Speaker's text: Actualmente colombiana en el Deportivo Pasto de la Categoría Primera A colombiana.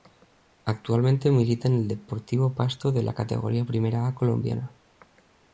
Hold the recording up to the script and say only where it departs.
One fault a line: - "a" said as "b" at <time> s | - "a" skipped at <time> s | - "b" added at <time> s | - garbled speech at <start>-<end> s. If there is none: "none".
- "colombiana" said as "milita" at 1.3 s